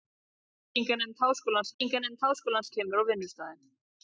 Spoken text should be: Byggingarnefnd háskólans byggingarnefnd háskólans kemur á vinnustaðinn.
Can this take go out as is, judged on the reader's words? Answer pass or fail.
pass